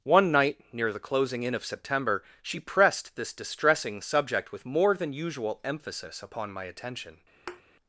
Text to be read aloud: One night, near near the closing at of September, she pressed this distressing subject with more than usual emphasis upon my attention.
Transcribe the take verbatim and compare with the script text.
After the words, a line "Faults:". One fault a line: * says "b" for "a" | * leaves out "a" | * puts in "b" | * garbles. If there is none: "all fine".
One night, near the closing in of September, she pressed this distressing subject with more than usual emphasis upon my attention.
Faults:
* leaves out "near"
* says "in" for "at"